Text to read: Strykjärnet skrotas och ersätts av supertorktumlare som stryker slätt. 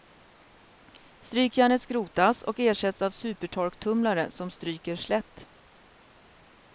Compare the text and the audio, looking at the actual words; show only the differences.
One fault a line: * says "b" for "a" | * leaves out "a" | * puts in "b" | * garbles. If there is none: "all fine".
all fine